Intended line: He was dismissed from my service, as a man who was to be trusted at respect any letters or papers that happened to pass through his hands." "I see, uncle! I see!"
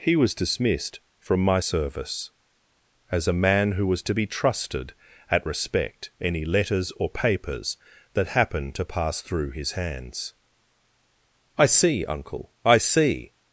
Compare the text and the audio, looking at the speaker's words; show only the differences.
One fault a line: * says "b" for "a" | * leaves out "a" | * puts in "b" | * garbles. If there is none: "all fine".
all fine